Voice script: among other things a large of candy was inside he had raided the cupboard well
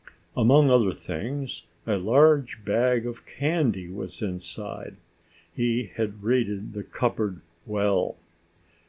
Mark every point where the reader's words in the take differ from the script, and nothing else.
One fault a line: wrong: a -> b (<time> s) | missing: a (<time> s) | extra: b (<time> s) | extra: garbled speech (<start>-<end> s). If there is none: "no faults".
extra: bag (2.6 s)